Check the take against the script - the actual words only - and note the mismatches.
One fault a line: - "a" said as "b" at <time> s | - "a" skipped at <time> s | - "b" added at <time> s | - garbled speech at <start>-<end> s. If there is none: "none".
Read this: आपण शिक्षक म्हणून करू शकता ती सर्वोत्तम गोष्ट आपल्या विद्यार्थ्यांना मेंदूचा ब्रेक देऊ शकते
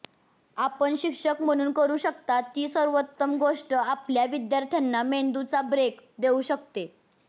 none